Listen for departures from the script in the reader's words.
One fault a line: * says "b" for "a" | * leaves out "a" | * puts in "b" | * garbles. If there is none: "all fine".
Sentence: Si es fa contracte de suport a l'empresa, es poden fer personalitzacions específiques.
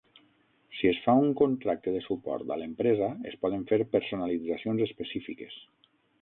* puts in "un"